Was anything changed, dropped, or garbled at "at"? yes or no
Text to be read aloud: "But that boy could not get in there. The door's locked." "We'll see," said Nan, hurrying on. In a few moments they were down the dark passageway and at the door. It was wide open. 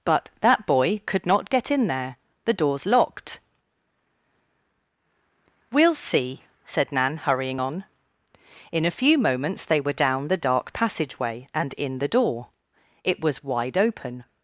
yes